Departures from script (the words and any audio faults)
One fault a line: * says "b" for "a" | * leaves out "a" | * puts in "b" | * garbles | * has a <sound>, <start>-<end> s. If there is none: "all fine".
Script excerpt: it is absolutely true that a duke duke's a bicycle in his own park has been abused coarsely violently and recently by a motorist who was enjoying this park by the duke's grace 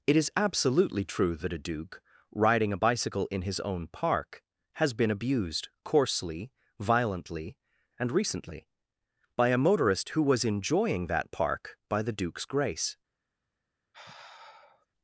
* says "riding" for "duke's"
* says "that" for "this"
* has a sigh, 13.9-14.9 s